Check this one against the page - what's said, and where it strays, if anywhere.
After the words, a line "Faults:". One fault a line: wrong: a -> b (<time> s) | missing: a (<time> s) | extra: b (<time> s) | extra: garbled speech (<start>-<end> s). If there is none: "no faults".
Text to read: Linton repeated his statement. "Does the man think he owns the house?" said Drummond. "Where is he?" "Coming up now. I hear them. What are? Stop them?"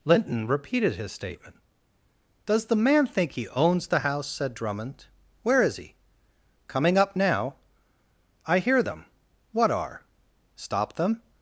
Linton repeated his statement. "Does the man think he owns the house?" said Drummond. "Where is he?" "Coming up now. I hear them. What are? Stop them?"
Faults:
no faults